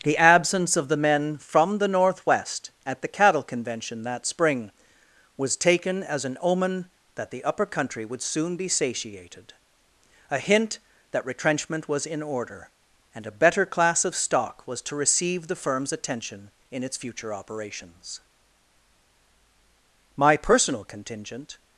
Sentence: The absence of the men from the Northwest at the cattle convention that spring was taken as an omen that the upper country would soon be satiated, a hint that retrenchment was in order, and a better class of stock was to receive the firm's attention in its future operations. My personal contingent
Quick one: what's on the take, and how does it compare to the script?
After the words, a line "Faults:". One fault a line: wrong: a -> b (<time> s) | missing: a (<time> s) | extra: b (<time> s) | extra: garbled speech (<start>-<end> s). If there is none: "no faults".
The absence of the men from the Northwest at the cattle convention that spring was taken as an omen that the upper country would soon be satiated, a hint that retrenchment was in order, and a better class of stock was to receive the firm's attention in its future operations. My personal contingent
Faults:
no faults